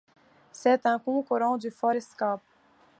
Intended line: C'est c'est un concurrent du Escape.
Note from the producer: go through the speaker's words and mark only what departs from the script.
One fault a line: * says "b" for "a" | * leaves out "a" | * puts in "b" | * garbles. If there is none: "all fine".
* leaves out "c'est"
* puts in "Ford"